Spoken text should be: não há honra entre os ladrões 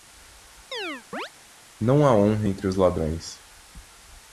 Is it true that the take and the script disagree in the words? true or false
false